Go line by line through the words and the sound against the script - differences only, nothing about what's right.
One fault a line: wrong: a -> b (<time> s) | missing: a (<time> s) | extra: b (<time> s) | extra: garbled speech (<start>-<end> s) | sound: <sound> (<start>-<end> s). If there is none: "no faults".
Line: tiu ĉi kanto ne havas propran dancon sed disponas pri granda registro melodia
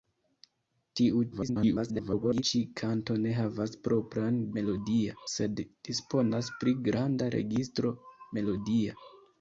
extra: garbled speech (1.3-2.4 s)
wrong: dancon -> melodia (4.6 s)